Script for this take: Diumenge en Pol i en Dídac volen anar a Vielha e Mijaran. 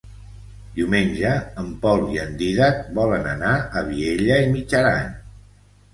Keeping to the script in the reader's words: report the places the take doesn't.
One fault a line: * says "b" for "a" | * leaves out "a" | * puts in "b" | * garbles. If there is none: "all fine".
all fine